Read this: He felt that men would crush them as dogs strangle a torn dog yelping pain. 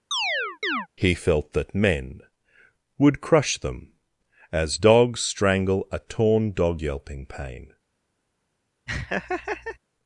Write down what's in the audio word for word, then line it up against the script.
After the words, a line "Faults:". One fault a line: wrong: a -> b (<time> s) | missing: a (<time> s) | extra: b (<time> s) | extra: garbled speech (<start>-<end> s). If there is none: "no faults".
He felt that men would crush them as dogs strangle a torn dog yelping pain.
Faults:
no faults